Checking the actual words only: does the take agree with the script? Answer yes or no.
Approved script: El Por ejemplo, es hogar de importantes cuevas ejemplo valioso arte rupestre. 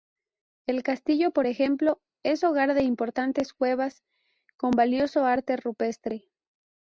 no